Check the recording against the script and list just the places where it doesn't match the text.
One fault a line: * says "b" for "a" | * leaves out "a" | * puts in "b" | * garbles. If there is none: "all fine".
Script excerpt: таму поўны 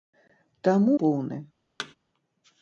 all fine